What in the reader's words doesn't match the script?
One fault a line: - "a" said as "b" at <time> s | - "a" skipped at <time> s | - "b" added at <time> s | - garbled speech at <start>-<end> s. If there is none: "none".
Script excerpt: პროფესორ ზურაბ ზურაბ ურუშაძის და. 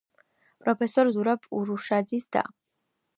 - "ზურაბ" skipped at 1.5 s